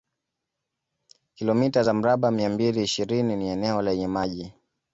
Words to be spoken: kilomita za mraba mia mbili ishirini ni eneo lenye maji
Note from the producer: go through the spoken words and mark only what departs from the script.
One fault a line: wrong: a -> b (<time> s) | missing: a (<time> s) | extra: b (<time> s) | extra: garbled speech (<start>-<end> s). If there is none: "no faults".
no faults